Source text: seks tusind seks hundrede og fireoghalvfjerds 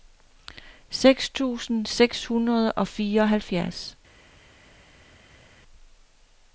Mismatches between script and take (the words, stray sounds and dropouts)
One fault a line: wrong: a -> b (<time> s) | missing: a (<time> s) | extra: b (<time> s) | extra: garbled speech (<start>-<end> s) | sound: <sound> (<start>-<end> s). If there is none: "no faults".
no faults